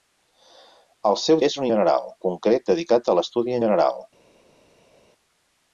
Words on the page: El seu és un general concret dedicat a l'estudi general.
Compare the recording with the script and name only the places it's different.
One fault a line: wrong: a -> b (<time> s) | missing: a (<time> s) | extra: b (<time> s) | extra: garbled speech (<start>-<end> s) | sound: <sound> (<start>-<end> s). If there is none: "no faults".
no faults